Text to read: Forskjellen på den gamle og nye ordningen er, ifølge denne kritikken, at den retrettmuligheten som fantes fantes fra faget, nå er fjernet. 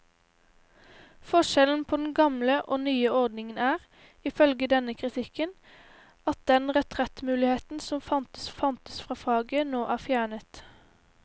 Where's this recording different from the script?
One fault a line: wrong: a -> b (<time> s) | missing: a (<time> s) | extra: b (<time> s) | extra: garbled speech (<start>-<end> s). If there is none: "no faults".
no faults